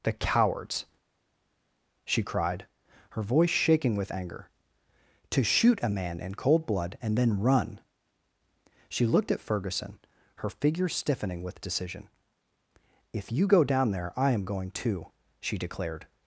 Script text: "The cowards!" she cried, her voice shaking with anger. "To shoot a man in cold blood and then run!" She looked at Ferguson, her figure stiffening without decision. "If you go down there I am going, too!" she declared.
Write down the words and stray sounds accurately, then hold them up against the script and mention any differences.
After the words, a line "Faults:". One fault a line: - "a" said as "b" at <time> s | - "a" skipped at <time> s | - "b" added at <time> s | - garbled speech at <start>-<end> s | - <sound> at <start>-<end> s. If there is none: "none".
"The cowards!" she cried, her voice shaking with anger. "To shoot a man in cold blood and then run!" She looked at Ferguson, her figure stiffening with decision. "If you go down there I am going, too!" she declared.
Faults:
- "without" said as "with" at 11.4 s